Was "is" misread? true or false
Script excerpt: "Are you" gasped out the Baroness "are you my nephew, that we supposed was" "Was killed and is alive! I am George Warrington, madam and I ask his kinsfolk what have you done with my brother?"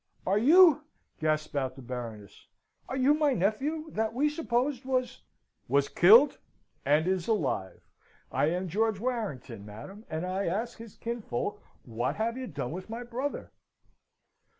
false